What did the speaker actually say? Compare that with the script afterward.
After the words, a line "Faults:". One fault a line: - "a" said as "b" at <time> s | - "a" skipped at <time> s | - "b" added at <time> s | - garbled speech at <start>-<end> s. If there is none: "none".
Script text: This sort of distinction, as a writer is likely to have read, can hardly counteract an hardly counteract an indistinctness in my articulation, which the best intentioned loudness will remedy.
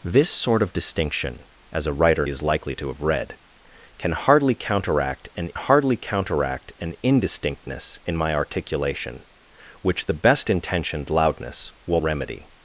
This sort of distinction, as a writer is likely to have read, can hardly counteract an hardly counteract an indistinctness in my articulation, which the best intentioned loudness will remedy.
Faults:
none